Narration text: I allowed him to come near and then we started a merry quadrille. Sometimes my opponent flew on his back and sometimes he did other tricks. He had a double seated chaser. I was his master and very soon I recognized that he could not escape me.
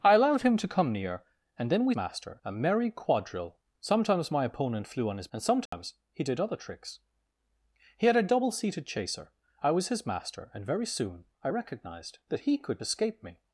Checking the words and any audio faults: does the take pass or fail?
fail